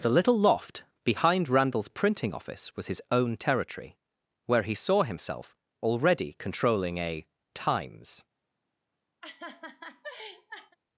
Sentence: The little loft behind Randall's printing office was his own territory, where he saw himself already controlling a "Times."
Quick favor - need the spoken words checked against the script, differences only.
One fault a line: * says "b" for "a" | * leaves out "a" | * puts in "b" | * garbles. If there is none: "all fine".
all fine